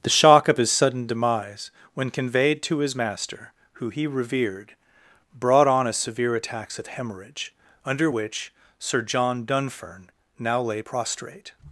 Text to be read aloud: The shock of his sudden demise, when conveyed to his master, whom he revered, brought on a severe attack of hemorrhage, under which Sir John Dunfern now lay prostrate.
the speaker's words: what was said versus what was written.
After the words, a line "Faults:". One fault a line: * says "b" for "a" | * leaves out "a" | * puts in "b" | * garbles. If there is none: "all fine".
The shock of his sudden demise, when conveyed to his master, who he revered, brought on a severe attacks of hemorrhage, under which Sir John Dunfern now lay prostrate.
Faults:
* says "who" for "whom"
* says "attacks" for "attack"